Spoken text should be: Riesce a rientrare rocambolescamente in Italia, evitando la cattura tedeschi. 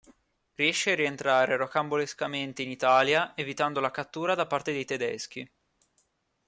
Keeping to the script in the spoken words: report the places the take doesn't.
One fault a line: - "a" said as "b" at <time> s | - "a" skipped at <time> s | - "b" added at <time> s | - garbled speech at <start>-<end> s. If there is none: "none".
- "da parte dei" added at 4.3 s